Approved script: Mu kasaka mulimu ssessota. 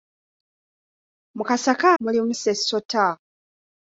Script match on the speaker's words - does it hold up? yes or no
yes